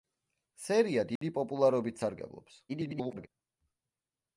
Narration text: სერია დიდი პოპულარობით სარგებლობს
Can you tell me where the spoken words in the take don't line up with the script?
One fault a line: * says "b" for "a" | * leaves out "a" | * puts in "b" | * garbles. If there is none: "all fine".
* garbles